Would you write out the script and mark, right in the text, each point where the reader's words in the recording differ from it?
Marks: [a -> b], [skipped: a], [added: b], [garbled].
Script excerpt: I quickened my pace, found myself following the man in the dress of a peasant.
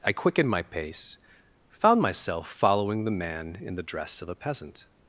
I quickened my pace, found myself following the man in the dress of a peasant.